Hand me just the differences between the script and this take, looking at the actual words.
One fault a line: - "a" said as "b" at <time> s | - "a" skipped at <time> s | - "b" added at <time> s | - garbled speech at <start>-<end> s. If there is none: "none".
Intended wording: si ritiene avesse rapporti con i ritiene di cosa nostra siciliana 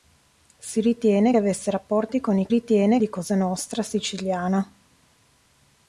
none